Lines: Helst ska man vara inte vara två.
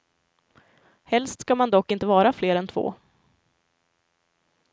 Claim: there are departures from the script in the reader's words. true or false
true